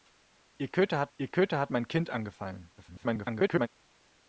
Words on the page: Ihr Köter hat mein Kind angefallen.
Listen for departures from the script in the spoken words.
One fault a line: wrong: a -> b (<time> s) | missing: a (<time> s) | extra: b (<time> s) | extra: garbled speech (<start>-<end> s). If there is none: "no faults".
extra: ihr Köter hat (1.2 s)
extra: garbled speech (2.8-3.7 s)